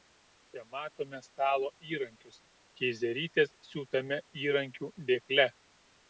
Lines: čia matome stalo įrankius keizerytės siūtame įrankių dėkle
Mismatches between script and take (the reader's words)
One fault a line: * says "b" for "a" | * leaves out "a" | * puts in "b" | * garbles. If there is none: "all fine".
all fine